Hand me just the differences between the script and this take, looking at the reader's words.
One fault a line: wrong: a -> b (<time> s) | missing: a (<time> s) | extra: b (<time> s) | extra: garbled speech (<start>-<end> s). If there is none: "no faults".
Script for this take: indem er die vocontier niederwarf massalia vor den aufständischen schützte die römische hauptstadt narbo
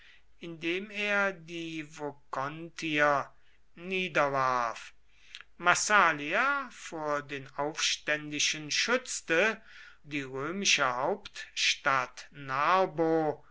no faults